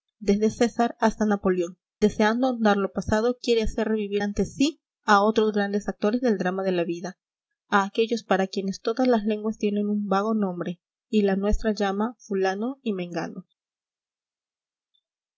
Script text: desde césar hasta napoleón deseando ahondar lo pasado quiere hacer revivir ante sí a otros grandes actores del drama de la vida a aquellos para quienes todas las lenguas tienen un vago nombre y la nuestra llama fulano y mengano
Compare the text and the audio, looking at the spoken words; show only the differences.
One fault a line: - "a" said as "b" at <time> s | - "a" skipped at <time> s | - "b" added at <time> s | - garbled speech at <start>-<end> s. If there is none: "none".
none